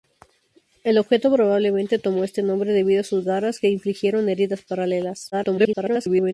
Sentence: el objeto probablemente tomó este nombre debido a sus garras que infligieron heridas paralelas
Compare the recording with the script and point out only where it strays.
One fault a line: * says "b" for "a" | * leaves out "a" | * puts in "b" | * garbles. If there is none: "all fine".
* garbles